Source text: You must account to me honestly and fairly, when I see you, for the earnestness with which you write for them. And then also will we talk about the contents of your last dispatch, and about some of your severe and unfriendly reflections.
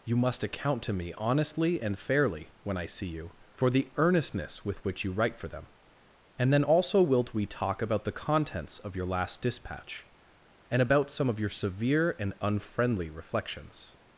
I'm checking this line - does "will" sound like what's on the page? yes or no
no